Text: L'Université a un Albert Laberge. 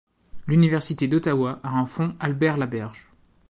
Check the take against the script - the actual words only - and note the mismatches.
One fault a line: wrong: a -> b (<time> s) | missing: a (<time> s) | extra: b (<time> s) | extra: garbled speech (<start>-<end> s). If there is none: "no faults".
extra: d'Ottawa (1.1 s)
extra: fonds (1.8 s)